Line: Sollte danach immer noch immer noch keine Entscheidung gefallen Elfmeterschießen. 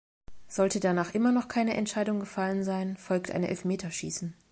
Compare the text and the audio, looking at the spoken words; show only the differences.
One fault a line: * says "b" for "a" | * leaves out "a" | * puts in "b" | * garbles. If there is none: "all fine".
* leaves out "immer noch"
* puts in "sein folgt ein"